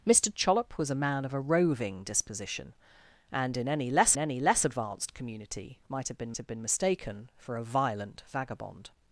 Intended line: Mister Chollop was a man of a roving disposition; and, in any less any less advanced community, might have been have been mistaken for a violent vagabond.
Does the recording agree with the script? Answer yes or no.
yes